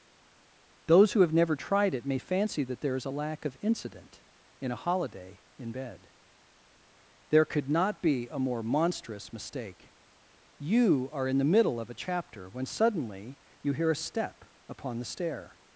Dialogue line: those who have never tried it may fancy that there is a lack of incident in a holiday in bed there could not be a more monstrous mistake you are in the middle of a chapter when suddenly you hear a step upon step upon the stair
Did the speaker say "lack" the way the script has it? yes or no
yes